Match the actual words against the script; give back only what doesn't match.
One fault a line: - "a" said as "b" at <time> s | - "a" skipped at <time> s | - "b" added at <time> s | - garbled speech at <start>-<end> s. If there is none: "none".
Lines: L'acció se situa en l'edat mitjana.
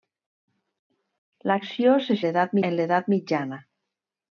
- "situa" said as "l'edat" at 2.2 s